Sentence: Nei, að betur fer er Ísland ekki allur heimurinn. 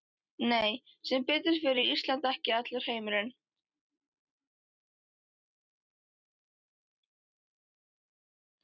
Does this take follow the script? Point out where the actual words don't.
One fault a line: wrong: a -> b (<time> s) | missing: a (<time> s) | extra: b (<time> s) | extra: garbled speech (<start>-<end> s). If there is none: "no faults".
wrong: að -> sem (1.1 s)